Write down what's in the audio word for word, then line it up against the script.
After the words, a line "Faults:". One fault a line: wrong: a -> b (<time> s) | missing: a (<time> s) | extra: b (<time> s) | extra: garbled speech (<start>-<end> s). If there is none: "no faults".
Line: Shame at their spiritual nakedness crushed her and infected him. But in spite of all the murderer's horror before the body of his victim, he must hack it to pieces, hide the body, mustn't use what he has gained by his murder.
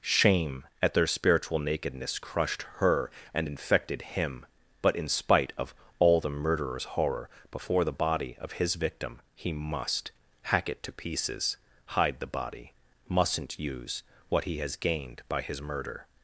Shame at their spiritual nakedness crushed her and infected him. But in spite of all the murderer's horror before the body of his victim, he must hack it to pieces, hide the body, mustn't use what he has gained by his murder.
Faults:
no faults